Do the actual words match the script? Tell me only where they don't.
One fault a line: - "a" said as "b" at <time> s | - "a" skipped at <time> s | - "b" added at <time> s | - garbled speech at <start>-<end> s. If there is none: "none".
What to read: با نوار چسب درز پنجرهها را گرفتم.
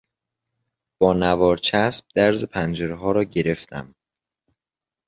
none